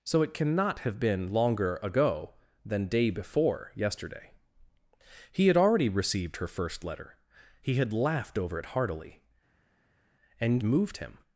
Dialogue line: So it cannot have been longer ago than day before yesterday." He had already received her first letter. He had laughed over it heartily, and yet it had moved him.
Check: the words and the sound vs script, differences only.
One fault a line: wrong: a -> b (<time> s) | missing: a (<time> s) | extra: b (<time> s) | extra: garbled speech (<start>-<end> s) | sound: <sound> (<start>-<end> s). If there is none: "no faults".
missing: yet it had (10.6 s)